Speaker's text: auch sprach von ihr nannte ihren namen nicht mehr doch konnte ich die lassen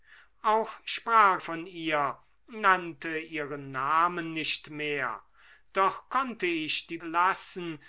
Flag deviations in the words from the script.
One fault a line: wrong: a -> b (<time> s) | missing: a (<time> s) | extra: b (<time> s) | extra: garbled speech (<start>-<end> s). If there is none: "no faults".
no faults